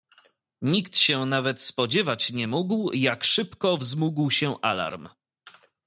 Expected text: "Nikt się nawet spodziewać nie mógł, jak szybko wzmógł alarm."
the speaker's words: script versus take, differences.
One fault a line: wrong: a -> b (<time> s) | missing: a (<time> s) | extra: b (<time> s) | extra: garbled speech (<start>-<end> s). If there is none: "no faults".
extra: się (4.3 s)